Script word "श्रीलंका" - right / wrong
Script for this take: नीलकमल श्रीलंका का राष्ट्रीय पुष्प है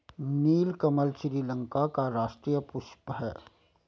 right